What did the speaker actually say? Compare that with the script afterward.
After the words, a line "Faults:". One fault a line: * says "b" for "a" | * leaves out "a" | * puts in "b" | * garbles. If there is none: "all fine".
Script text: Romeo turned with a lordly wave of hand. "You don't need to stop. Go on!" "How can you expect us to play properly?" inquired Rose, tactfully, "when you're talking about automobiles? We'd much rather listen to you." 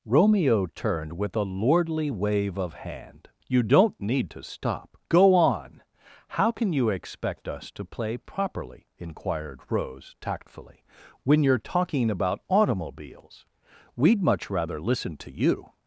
Romeo turned with a lordly wave of hand. "You don't need to stop. Go on!" "How can you expect us to play properly?" inquired Rose, tactfully, "when you're talking about automobiles? We'd much rather listen to you."
Faults:
all fine